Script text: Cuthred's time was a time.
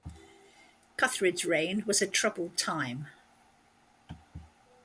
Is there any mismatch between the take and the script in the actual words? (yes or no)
yes